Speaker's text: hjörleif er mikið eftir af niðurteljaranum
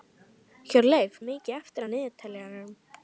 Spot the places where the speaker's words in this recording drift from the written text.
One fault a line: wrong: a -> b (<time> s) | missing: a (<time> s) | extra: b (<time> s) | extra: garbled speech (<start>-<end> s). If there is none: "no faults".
no faults